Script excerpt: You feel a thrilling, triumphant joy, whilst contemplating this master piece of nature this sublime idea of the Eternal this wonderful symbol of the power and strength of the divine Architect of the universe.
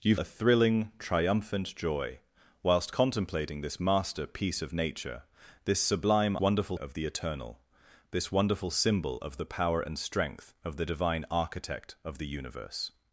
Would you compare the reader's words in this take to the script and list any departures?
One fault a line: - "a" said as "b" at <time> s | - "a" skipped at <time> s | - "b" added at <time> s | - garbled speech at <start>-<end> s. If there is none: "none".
- "feel" skipped at 0.1 s
- "idea" said as "wonderful" at 6.4 s